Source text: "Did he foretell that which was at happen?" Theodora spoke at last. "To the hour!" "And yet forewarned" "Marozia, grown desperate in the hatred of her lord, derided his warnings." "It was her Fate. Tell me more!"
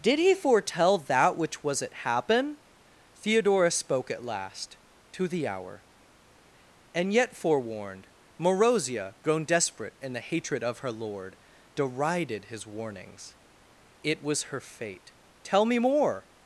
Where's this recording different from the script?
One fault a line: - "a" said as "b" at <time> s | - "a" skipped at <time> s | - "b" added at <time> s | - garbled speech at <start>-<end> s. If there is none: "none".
none